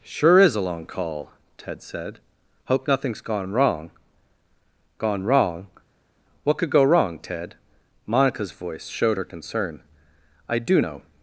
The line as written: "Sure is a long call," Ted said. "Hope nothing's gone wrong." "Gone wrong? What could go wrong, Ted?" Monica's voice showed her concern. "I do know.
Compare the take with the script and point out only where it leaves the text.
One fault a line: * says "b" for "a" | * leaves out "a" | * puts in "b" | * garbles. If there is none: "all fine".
all fine